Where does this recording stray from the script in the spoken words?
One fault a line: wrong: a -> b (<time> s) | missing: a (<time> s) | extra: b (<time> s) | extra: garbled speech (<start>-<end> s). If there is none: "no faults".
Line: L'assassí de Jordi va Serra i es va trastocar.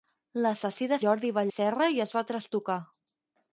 no faults